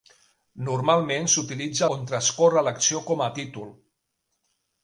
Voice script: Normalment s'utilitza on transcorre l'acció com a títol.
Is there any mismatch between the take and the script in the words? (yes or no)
no